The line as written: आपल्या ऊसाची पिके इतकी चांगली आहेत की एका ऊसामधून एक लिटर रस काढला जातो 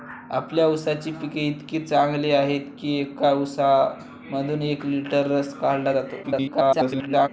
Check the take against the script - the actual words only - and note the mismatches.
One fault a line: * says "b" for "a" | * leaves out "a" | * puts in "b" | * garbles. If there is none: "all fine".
* garbles